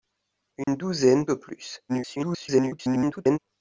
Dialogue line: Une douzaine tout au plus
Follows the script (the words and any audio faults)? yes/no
no